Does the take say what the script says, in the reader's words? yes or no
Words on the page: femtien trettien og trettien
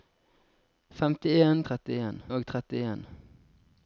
yes